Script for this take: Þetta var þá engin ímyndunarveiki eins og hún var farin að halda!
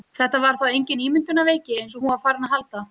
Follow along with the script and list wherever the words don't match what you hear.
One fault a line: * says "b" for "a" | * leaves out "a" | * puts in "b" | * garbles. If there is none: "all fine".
all fine